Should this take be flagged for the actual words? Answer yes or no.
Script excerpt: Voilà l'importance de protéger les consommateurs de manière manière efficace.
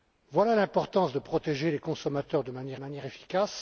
no